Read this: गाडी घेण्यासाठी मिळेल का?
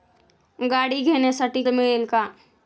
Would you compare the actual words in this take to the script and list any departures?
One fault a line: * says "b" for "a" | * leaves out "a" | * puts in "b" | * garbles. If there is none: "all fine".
all fine